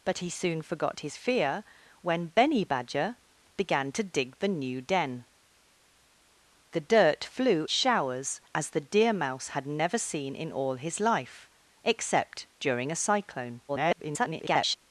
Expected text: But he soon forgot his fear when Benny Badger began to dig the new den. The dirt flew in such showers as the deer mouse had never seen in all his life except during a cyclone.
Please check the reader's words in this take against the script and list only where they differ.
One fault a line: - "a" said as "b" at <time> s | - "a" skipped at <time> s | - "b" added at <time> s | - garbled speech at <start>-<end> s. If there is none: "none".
- "in such" skipped at 7.7 s
- garbled speech at 13.7-14.8 s